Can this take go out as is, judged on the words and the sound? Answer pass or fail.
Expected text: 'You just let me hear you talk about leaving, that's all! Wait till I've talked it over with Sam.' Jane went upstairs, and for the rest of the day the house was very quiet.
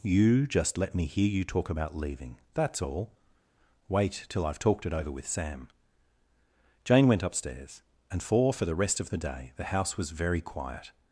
fail